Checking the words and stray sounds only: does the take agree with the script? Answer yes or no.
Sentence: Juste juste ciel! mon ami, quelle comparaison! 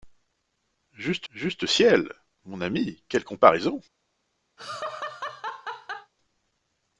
no